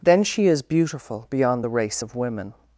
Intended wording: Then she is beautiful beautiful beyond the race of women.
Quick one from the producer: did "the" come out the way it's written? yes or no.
yes